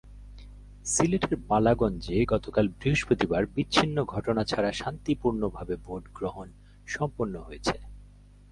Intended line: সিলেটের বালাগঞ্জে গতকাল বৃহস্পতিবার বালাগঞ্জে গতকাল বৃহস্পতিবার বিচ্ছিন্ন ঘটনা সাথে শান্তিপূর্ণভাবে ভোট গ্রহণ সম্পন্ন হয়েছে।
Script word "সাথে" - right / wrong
wrong